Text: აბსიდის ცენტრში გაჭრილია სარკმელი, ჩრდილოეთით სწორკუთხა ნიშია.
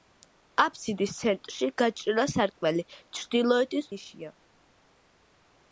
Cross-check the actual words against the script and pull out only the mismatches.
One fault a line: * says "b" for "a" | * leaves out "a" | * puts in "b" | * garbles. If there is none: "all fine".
* leaves out "სწორკუთხა"